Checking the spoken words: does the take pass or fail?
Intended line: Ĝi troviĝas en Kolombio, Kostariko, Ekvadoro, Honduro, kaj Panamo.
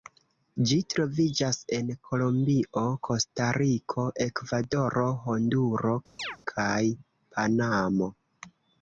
pass